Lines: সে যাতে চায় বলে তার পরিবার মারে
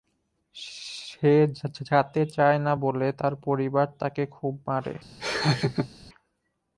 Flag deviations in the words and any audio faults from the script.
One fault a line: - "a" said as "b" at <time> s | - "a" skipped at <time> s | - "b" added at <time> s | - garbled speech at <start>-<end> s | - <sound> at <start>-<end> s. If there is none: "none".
- "না" added at 2.6 s
- "তাকে খুব" added at 4.0 s
- laugh at 5.2-5.9 s